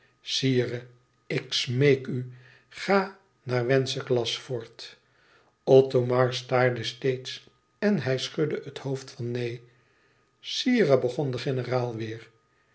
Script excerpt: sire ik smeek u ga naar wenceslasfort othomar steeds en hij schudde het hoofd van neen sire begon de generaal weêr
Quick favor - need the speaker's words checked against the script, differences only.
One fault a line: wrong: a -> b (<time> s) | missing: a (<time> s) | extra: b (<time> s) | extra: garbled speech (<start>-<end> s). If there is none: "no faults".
extra: staarde (6.3 s)